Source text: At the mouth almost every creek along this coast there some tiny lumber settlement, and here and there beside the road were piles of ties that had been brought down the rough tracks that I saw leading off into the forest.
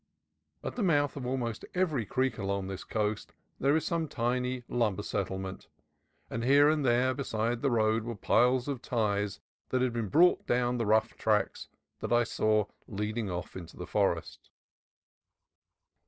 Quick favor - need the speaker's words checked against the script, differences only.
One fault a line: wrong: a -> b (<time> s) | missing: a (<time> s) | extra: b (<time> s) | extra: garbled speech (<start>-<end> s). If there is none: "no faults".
extra: of (1.1 s)
extra: is (3.8 s)